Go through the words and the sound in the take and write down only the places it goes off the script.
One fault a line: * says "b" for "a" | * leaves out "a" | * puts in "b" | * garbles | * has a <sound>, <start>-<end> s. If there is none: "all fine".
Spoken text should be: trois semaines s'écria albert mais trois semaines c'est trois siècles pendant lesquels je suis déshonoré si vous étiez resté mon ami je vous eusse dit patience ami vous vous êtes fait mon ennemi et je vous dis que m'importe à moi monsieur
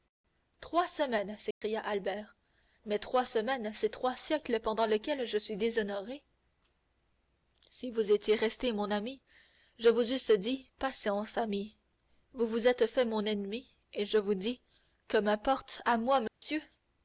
* has a dropout, 1.5-1.6 s
* has a dropout, 16.3-16.4 s